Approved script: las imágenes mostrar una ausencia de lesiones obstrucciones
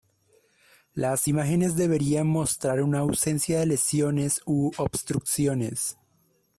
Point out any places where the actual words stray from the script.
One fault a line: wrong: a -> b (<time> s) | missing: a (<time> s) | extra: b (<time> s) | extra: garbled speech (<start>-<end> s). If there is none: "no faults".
extra: deberían (1.7 s)
extra: u (4.4 s)